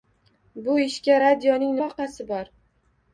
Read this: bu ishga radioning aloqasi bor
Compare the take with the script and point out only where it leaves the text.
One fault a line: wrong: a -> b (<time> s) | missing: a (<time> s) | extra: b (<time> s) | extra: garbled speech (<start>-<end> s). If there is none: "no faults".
no faults